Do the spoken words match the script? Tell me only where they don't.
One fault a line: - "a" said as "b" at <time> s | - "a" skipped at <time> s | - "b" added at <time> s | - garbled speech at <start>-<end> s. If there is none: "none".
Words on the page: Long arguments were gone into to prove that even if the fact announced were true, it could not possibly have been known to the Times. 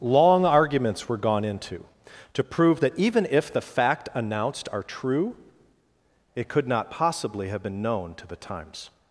- "were" said as "are" at 4.7 s